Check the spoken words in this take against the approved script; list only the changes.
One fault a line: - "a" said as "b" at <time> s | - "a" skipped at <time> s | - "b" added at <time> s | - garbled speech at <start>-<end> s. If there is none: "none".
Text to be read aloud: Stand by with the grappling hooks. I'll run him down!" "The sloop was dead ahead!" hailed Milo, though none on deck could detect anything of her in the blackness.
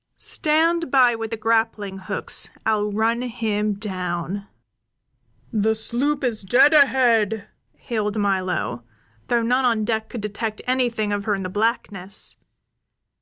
- "was" said as "is" at 6.2 s